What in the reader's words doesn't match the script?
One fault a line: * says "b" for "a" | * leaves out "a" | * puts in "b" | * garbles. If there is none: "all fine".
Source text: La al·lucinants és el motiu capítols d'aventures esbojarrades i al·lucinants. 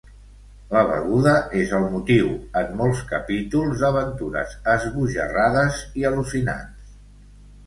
* says "beguda" for "al·lucinants"
* puts in "en molts"